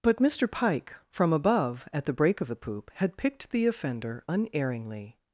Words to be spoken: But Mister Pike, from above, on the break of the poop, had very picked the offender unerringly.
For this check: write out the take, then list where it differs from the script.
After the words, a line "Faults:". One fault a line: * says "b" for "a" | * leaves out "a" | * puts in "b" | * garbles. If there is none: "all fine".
But Mister Pike, from above, at the break of the poop, had picked the offender unerringly.
Faults:
* says "at" for "on"
* leaves out "very"